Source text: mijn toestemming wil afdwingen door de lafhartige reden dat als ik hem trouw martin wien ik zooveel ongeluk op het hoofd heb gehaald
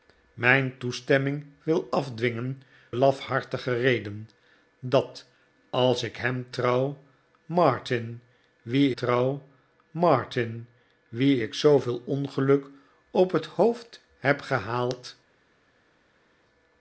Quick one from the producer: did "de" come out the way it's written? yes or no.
no